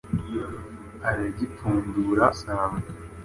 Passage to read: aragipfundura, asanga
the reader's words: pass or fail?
pass